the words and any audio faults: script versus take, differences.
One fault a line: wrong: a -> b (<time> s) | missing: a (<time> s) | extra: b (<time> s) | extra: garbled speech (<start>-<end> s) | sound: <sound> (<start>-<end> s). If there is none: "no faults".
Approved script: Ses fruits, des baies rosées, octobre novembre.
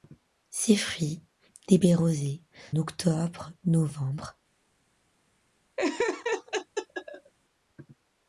sound: laugh (5.8-7.3 s)